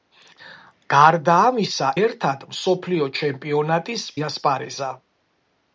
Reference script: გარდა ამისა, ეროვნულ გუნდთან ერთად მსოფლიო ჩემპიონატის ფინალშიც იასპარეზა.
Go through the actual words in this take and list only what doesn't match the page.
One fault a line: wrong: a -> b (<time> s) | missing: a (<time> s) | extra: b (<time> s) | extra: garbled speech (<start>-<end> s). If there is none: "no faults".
missing: ეროვნულ გუნდთან (1.9 s)
missing: ფინალშიც (4.1 s)